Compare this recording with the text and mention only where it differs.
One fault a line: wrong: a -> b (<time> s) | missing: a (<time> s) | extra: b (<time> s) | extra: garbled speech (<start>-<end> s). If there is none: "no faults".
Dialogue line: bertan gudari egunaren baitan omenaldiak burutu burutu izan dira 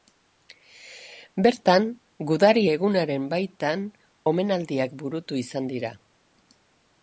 missing: burutu (5.4 s)